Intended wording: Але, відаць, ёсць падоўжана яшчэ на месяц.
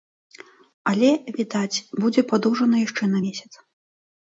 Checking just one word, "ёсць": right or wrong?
wrong